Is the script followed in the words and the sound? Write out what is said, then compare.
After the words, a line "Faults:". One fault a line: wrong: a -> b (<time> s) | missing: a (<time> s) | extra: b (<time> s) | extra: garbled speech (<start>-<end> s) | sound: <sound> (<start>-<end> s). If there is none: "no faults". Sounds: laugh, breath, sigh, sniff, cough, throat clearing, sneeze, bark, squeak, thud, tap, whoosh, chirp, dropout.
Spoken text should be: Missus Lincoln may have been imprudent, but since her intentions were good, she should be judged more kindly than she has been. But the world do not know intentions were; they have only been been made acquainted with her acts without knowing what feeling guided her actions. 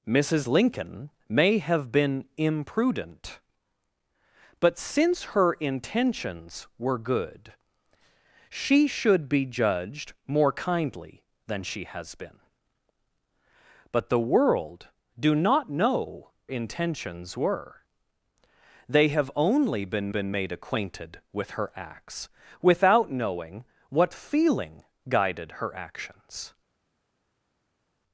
Missus Lincoln may have been imprudent, but since her intentions were good, she should be judged more kindly than she has been. But the world do not know intentions were; they have only been been made acquainted with her acts without knowing what feeling guided her actions.
Faults:
no faults